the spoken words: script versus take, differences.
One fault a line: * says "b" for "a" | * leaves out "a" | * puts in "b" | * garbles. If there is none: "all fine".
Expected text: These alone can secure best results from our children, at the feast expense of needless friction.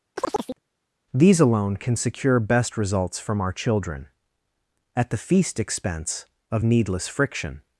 all fine